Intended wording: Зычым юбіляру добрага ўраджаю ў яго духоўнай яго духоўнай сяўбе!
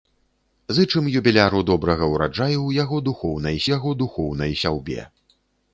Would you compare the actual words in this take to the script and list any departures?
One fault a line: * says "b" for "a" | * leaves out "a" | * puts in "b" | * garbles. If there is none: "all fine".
all fine